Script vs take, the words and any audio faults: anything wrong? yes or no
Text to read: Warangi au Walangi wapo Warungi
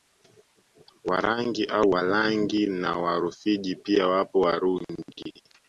yes